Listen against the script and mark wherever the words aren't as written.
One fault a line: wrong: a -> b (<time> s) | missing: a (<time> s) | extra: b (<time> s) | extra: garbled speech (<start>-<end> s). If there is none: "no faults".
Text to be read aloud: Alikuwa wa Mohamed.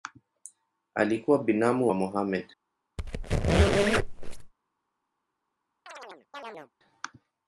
extra: binamu (1.4 s)